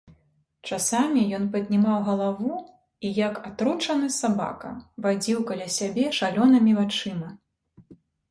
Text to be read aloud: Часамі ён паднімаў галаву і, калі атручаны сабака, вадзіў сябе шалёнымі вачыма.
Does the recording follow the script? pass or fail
fail